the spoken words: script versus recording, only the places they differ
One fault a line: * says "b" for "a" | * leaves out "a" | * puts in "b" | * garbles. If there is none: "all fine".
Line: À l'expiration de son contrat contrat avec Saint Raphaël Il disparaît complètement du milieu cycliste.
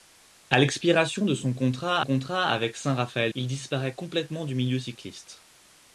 all fine